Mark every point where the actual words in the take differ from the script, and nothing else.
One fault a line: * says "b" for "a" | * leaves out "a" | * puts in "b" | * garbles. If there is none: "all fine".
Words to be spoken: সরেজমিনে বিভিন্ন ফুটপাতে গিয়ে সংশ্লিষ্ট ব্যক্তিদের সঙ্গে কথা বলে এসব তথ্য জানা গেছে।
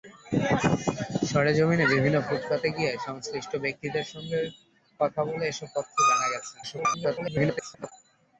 * garbles